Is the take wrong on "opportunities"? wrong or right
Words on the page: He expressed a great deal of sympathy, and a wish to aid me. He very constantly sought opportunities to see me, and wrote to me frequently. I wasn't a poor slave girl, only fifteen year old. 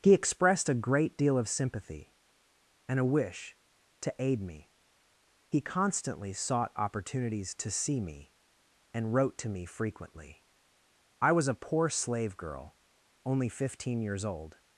right